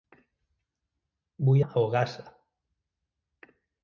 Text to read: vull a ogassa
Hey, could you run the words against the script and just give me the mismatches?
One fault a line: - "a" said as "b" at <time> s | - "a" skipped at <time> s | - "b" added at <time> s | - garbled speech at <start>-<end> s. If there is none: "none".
none